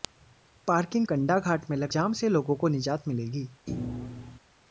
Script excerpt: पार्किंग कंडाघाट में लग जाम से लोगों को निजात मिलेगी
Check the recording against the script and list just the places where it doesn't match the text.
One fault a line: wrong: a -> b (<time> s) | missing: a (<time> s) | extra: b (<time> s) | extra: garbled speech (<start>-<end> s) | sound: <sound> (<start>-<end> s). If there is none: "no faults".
sound: thud (3.7-4.4 s)